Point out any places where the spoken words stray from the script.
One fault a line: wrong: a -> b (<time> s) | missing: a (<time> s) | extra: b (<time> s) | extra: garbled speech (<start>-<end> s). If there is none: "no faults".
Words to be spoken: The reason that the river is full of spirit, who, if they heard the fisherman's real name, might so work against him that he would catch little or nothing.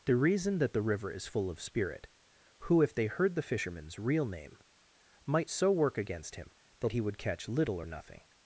no faults